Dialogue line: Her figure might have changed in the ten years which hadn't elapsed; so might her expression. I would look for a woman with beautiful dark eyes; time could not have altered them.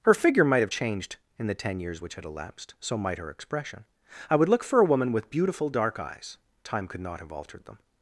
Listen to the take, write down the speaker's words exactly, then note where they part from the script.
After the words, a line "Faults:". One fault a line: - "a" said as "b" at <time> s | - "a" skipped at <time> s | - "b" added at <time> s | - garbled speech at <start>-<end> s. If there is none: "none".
Her figure might have changed in the ten years which had elapsed; so might her expression. I would look for a woman with beautiful dark eyes; time could not have altered them.
Faults:
- "hadn't" said as "had" at 2.2 s